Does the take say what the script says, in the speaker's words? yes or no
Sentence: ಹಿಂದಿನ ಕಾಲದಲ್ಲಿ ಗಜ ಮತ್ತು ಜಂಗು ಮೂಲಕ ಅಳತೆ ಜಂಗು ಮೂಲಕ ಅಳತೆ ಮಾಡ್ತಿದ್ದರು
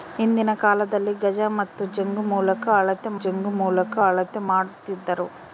yes